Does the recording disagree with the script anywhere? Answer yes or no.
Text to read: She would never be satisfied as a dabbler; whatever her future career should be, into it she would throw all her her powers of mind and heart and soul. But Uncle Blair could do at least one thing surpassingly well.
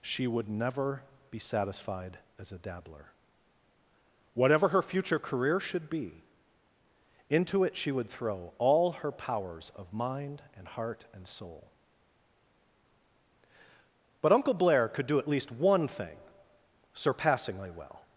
yes